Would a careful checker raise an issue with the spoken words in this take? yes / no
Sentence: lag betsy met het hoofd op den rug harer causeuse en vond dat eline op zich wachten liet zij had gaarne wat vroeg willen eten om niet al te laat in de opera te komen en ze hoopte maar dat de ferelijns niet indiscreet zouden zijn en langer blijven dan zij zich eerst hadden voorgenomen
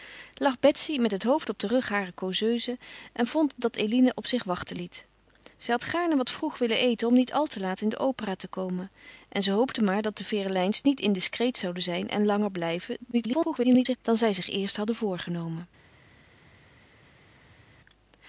yes